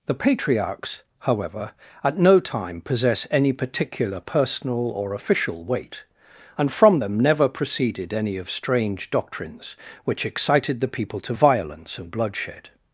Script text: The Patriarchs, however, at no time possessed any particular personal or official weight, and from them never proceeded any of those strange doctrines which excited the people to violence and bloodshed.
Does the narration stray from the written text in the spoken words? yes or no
yes